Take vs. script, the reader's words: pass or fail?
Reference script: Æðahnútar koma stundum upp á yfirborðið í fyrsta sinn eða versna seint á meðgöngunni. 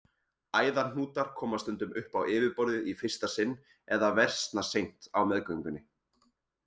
pass